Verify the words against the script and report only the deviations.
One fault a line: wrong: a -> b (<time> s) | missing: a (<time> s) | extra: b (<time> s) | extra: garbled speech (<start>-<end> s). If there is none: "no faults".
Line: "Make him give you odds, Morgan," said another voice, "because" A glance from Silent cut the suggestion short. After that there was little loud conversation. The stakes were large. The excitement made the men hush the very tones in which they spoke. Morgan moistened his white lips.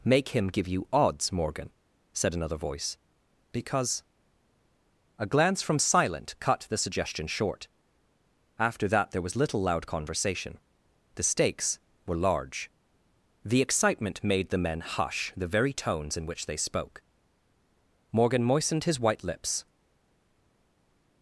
no faults